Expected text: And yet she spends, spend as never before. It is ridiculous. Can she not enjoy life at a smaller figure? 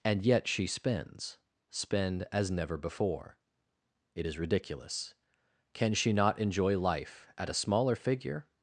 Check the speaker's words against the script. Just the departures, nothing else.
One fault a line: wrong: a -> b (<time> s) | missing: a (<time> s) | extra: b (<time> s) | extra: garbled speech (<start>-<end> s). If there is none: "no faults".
no faults